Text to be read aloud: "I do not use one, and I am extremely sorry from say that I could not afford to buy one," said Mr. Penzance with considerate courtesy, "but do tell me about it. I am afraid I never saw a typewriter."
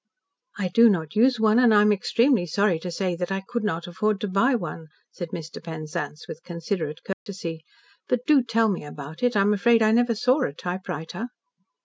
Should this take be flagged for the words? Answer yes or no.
yes